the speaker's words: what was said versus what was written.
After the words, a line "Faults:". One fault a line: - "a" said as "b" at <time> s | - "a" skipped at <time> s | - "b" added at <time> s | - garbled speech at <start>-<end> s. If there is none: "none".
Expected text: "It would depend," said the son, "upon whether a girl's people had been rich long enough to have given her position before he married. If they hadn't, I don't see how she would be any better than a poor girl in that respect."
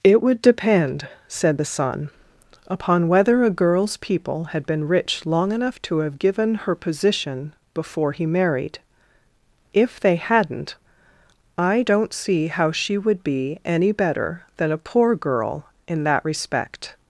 "It would depend," said the son, "upon whether a girl's people had been rich long enough to have given her position before he married. If they hadn't, I don't see how she would be any better than a poor girl in that respect."
Faults:
none